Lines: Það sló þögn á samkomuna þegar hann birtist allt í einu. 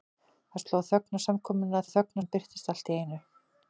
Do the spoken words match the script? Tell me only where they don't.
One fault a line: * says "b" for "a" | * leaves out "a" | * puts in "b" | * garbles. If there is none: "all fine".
* says "þögn" for "þegar"